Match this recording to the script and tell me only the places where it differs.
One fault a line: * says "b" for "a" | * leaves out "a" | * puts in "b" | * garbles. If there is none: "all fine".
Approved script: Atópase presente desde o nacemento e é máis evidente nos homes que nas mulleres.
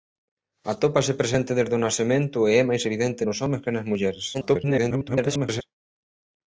* garbles